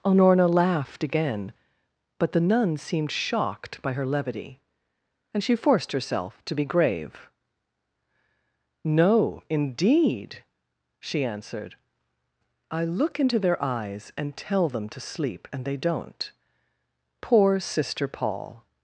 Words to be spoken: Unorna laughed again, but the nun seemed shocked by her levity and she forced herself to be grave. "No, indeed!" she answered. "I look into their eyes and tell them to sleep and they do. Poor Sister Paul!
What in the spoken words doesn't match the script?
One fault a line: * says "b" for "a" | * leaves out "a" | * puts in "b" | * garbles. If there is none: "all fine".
* says "don't" for "do"